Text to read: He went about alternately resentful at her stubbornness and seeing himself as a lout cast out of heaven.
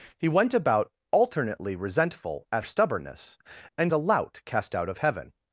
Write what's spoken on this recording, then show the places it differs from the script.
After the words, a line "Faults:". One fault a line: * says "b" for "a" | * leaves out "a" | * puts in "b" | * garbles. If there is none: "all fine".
He went about alternately resentful at stubbornness and a lout cast out of heaven.
Faults:
* leaves out "her"
* leaves out "seeing himself as"